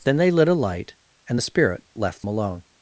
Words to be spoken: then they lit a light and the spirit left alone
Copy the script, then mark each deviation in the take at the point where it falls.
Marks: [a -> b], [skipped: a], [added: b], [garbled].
then they lit a light and the spirit left alone